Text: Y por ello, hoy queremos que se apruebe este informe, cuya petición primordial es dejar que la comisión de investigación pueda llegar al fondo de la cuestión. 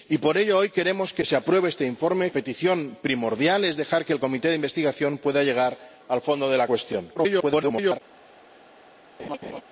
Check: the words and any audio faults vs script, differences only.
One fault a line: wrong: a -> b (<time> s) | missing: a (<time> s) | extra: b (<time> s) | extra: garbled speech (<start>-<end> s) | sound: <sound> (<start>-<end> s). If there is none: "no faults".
missing: cuya (2.3 s)
extra: garbled speech (7.2-8.0 s)
sound: laugh (9.2-9.6 s)